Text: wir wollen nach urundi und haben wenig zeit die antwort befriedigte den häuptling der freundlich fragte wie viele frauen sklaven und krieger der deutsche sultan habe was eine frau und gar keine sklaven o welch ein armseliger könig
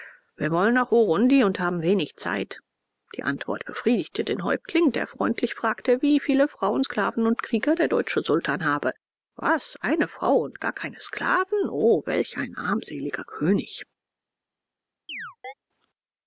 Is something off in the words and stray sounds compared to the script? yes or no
yes